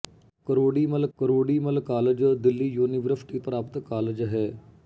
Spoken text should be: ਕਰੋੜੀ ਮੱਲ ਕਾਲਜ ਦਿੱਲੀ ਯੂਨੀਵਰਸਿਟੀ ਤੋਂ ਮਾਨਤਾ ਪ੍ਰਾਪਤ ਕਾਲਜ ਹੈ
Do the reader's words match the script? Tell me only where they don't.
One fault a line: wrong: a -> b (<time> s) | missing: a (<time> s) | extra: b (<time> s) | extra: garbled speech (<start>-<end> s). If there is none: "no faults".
extra: ਕਰੋੜੀ ਮੱਲ (1.2 s)
missing: ਤੋਂ ਮਾਨਤਾ (3.4 s)